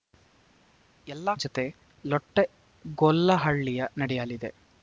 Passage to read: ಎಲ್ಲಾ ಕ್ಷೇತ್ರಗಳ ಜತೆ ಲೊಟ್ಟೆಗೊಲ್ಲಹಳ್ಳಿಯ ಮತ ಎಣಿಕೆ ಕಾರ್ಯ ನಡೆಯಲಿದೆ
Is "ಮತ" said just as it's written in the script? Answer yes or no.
no